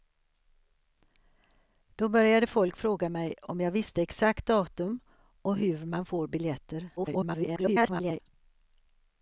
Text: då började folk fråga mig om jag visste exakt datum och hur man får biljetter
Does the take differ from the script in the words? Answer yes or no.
yes